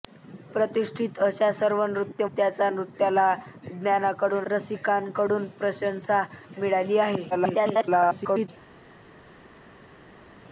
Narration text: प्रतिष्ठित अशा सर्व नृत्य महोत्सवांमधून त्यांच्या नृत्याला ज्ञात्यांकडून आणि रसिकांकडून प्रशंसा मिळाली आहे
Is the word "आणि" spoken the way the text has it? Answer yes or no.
no